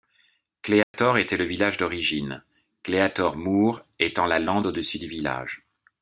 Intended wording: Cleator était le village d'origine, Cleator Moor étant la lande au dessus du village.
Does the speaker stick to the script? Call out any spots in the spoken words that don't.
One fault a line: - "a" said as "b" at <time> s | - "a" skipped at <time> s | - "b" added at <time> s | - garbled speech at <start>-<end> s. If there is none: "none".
none